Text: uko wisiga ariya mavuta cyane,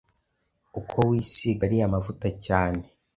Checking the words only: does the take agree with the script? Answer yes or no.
yes